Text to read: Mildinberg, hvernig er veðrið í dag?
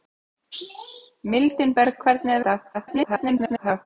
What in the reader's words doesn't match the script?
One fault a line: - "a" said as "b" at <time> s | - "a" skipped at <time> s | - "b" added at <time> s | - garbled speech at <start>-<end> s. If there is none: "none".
- "veðrið" skipped at 2.4 s
- garbled speech at 2.7-3.9 s